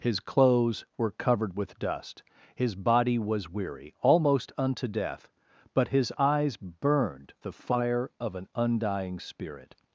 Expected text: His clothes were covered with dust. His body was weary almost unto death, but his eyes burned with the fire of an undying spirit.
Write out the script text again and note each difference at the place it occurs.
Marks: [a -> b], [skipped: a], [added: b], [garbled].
His clothes were covered with dust. His body was weary almost unto death, but his eyes burned [skipped: with] the fire of an undying spirit.